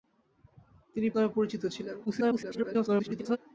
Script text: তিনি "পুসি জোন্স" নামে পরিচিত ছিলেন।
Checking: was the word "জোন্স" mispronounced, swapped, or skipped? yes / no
yes